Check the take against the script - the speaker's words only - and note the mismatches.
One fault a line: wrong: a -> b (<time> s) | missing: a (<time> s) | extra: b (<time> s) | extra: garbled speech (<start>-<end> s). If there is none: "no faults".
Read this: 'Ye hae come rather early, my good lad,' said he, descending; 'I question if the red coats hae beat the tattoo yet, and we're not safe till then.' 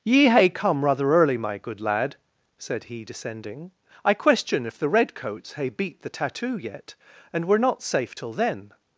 no faults